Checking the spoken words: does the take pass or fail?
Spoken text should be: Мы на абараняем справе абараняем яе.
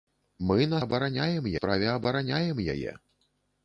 pass